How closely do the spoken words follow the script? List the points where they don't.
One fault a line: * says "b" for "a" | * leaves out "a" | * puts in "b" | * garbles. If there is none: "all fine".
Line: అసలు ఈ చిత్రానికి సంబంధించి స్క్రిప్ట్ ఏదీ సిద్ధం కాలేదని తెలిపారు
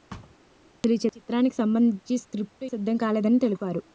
* leaves out "ఏదీ"